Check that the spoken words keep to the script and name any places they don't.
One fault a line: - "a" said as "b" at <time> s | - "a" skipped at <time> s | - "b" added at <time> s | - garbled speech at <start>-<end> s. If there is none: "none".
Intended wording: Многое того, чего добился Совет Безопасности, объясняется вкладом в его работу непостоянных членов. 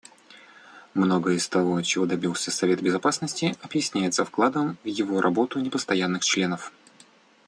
- "из" added at 1.4 s